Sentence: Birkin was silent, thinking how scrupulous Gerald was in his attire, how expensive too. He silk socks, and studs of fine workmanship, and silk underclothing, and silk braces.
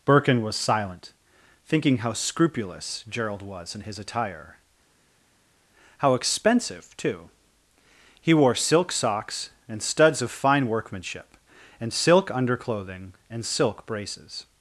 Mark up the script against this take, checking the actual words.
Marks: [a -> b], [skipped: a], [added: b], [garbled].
Birkin was silent, thinking how scrupulous Gerald was in his attire, how expensive too. He [added: wore] silk socks, and studs of fine workmanship, and silk underclothing, and silk braces.